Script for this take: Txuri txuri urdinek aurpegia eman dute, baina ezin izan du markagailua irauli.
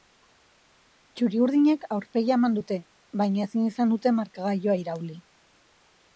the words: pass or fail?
fail